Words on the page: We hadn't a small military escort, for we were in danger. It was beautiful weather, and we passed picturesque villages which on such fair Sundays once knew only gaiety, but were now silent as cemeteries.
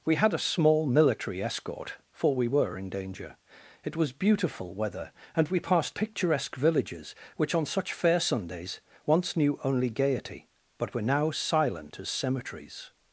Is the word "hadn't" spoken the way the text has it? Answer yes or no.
no